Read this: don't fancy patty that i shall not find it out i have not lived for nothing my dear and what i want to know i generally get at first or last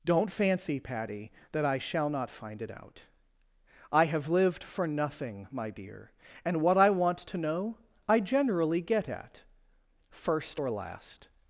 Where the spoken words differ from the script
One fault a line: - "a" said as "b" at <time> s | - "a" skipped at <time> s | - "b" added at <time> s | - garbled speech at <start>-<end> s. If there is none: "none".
- "not" skipped at 4.3 s